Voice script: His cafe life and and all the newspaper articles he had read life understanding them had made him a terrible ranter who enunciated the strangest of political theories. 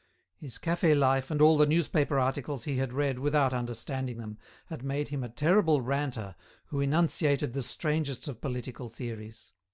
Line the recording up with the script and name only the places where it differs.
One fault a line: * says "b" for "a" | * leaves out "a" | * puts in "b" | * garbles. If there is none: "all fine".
* leaves out "and"
* says "without" for "life"